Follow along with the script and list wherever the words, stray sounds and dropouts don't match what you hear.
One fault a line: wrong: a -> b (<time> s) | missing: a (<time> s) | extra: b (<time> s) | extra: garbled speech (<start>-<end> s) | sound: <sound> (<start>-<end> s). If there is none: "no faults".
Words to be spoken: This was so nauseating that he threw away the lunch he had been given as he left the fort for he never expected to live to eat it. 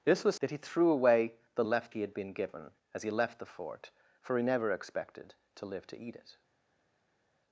missing: so nauseating (0.3 s)
wrong: lunch -> left (1.6 s)